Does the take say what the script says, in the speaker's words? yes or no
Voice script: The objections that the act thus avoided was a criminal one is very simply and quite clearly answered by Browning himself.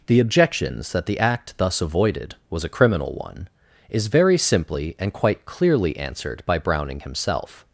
yes